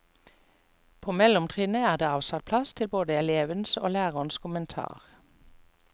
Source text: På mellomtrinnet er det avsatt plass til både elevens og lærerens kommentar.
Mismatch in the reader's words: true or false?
false